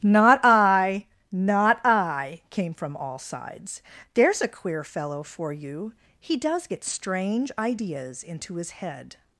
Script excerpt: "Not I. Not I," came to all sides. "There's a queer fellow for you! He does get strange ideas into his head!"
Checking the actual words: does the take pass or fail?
fail